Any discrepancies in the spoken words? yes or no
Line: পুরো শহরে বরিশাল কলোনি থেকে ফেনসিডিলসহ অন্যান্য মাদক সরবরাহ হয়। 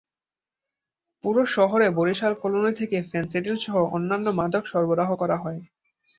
yes